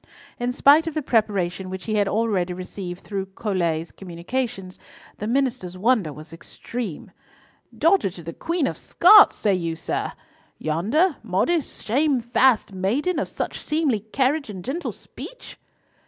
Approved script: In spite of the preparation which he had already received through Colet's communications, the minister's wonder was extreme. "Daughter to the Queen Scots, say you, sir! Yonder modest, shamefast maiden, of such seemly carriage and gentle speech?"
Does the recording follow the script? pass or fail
fail